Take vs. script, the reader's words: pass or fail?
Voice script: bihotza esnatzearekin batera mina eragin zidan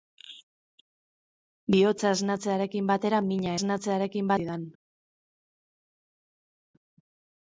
fail